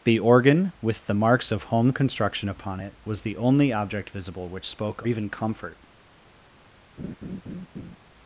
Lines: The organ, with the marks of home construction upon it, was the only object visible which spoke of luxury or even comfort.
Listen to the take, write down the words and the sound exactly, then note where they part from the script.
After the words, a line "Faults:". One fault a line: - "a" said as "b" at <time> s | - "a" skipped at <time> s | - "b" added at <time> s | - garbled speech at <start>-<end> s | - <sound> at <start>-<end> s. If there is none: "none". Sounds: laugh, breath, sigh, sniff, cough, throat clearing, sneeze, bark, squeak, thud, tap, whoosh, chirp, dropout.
The organ, with the marks of home construction upon it, was the only object visible which spoke even comfort.
Faults:
- "of luxury or" skipped at 5.0 s
- laugh at 7.0-8.0 s